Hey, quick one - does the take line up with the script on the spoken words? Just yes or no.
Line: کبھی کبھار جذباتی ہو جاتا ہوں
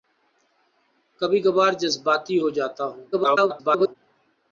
no